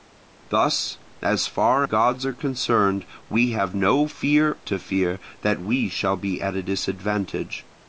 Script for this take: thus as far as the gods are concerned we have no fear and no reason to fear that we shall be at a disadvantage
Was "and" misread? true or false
true